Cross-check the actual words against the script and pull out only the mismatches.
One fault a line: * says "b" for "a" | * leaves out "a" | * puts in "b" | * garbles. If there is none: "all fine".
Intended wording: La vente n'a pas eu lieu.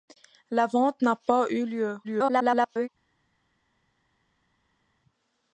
* garbles